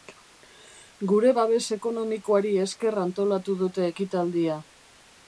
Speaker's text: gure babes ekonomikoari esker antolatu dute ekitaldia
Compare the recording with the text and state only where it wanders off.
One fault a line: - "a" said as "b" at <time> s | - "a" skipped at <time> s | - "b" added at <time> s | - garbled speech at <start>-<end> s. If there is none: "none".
none